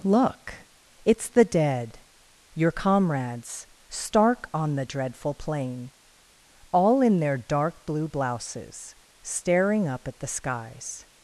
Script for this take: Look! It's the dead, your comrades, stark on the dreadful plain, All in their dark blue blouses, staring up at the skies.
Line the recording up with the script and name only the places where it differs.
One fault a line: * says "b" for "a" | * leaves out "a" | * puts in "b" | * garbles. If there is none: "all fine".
all fine